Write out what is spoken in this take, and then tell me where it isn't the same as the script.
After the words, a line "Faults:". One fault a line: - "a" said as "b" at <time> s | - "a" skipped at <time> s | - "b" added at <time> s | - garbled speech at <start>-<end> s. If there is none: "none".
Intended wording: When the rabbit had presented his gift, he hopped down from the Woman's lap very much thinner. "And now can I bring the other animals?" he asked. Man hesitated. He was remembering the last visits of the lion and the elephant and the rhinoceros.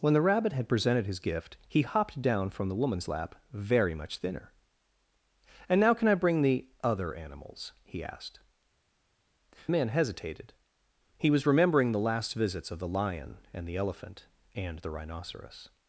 When the rabbit had presented his gift, he hopped down from the Woman's lap very much thinner. "And now can I bring the other animals?" he asked. Man hesitated. He was remembering the last visits of the lion and the elephant and the rhinoceros.
Faults:
none